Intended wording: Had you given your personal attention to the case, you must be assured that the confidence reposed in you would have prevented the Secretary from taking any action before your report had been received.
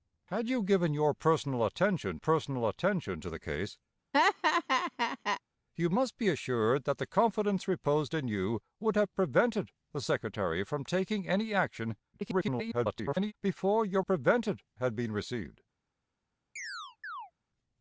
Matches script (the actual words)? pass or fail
fail